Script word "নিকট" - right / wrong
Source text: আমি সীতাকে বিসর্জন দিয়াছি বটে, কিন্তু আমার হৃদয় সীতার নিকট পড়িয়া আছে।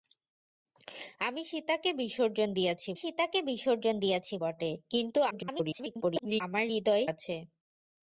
wrong